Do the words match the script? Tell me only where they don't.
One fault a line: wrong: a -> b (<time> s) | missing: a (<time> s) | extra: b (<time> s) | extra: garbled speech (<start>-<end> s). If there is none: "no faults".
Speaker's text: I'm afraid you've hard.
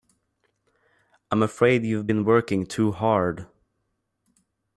extra: been working too (2.0 s)